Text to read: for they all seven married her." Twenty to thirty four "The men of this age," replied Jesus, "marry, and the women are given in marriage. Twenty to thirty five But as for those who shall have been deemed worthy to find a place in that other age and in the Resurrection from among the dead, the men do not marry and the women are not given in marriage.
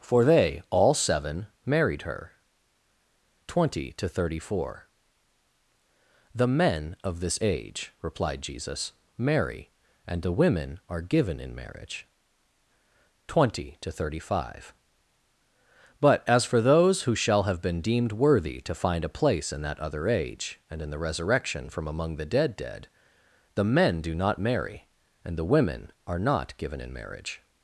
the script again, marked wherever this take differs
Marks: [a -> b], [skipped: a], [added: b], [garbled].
for they all seven married her." Twenty to thirty four "The men of this age," replied Jesus, "marry, and the women are given in marriage. Twenty to thirty five But as for those who shall have been deemed worthy to find a place in that other age and in the Resurrection from among the dead, [added: dead] the men do not marry and the women are not given in marriage.